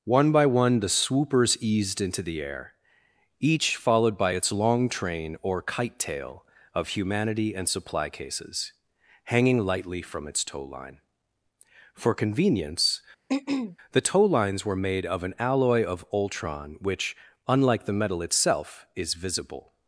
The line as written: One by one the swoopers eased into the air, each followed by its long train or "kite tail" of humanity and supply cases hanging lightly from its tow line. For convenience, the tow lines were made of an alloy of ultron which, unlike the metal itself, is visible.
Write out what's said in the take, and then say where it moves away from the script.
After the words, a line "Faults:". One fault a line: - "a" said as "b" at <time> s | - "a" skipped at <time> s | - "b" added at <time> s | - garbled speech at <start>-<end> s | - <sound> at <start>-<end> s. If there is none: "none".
One by one the swoopers eased into the air, each followed by its long train or "kite tail" of humanity and supply cases hanging lightly from its tow line. For convenience, the tow lines were made of an alloy of ultron which, unlike the metal itself, is visible.
Faults:
- throat clearing at 13.3-13.8 s